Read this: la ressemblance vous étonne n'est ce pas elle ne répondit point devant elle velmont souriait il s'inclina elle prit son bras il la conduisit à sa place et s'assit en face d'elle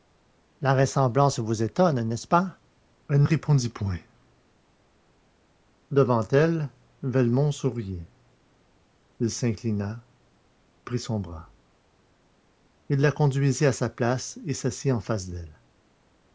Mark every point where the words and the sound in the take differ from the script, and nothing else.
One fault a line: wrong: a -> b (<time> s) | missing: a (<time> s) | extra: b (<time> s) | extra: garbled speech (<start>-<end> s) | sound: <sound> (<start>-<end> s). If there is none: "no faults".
missing: ne (3.2 s)
missing: elle (10.0 s)